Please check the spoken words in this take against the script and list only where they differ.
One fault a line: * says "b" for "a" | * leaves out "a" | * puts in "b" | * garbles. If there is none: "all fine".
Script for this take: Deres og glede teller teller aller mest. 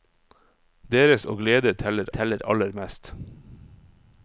all fine